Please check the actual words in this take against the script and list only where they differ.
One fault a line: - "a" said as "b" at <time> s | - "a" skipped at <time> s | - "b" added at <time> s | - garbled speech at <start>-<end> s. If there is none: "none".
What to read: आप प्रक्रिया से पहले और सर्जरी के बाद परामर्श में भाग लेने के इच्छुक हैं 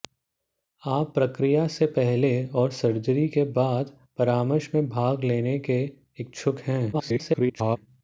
- garbled speech at 6.9-7.8 s